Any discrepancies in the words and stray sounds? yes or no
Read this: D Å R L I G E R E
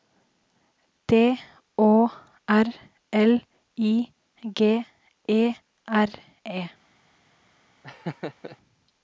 yes